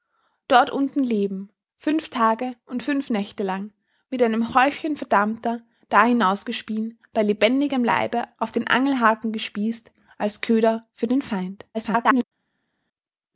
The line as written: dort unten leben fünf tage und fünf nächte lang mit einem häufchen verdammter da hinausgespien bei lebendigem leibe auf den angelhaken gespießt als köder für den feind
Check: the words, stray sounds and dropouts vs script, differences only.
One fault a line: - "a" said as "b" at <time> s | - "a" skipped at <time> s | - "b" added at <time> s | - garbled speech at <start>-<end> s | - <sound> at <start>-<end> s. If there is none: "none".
- garbled speech at 11.7-12.2 s